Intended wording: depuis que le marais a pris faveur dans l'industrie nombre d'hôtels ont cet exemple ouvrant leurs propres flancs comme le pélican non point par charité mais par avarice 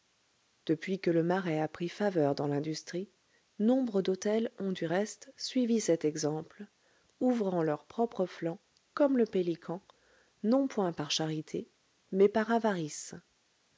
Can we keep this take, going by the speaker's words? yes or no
no